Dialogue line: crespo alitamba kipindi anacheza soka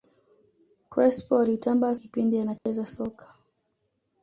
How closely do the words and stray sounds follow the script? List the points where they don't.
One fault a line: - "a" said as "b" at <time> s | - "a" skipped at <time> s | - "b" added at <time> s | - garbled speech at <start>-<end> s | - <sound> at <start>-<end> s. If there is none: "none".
- dropout at 2.6-2.7 s